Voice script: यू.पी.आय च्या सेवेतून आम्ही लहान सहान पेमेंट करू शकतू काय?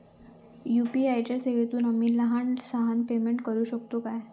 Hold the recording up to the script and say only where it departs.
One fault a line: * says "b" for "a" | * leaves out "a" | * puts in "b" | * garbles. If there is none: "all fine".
all fine